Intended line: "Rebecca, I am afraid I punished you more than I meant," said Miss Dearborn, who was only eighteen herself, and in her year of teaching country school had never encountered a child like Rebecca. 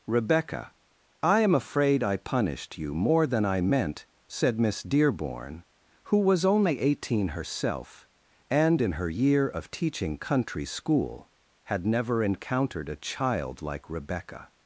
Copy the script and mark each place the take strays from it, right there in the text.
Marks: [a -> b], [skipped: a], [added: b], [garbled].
"Rebecca, I am afraid I punished you more than I meant," said Miss Dearborn, who was only eighteen herself, and in her year of teaching country school had never encountered a child like Rebecca.